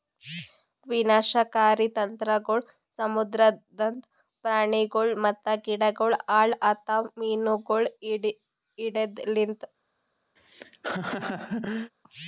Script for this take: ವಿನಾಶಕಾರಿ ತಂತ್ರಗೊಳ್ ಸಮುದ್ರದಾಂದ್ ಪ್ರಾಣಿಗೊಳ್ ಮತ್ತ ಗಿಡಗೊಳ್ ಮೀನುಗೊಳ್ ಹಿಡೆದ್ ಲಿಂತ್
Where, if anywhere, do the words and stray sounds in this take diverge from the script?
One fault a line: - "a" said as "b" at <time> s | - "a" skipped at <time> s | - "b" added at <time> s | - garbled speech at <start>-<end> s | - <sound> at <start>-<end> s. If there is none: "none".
- "ಹಾಳ್ ಆತವ್" added at 6.3 s
- laugh at 10.4-11.9 s